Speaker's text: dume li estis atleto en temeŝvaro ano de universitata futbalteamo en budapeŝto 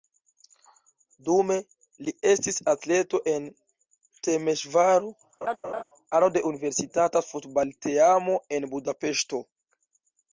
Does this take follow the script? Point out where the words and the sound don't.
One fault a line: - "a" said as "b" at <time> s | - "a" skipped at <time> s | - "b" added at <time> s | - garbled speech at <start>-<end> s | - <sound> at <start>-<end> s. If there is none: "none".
- laugh at 5.4-5.8 s